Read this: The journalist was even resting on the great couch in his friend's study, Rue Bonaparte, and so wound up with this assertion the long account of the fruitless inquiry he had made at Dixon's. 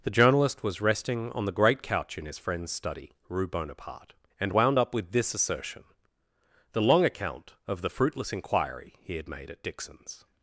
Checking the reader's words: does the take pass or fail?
fail